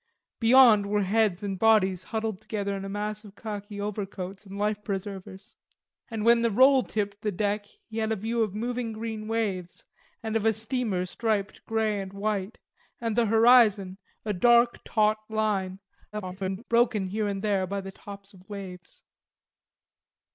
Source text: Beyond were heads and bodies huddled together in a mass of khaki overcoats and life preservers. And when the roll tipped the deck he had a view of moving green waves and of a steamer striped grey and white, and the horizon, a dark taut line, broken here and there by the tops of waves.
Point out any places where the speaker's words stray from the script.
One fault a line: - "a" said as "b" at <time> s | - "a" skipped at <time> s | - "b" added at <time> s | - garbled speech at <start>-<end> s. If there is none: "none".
- garbled speech at 16.1-16.6 s